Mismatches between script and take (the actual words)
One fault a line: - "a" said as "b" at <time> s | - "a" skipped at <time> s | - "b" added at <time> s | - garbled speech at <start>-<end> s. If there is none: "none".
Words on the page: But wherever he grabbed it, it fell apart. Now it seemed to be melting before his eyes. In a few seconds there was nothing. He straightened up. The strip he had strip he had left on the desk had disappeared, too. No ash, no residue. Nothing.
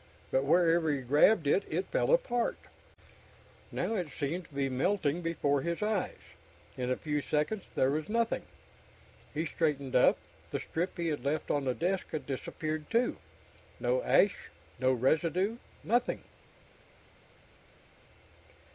- "strip he had" skipped at 11.2 s